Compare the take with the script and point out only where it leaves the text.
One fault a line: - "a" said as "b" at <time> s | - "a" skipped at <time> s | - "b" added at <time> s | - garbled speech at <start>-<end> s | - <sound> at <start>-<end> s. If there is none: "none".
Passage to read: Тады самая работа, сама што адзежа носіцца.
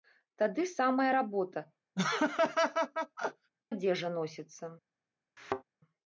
- "сама што" skipped at 1.6 s
- laugh at 1.9-3.5 s
- thud at 5.4-5.6 s